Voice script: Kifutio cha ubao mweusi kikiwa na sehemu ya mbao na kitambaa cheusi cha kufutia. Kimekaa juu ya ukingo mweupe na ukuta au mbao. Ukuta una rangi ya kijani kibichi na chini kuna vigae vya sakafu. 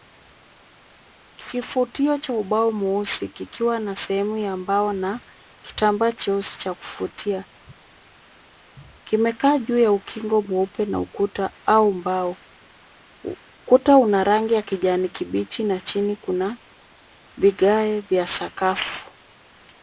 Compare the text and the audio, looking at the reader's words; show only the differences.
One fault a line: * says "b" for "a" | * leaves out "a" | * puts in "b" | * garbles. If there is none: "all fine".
all fine